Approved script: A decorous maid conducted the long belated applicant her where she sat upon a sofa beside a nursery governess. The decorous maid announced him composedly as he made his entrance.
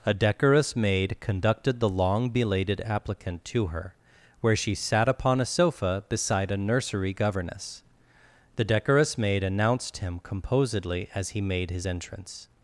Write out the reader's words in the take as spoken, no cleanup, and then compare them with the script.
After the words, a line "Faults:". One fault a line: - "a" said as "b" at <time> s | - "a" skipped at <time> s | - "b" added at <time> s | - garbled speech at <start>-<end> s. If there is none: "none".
A decorous maid conducted the long belated applicant to her where she sat upon a sofa beside a nursery governess. The decorous maid announced him composedly as he made his entrance.
Faults:
- "to" added at 3.5 s